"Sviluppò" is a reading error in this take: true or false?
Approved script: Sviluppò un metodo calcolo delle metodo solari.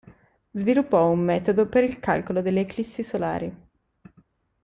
false